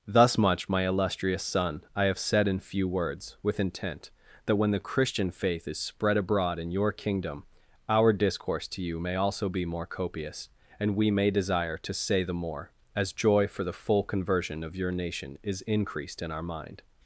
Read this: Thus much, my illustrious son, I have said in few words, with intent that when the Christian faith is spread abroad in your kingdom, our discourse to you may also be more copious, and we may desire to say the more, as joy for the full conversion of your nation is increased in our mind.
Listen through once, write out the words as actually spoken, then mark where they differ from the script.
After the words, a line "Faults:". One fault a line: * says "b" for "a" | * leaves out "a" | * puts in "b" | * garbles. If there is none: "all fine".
Thus much, my illustrious son, I have said in few words, with intent that when the Christian faith is spread abroad in your kingdom, our discourse to you may also be more copious, and we may desire to say the more, as joy for the full conversion of your nation is increased in our mind.
Faults:
all fine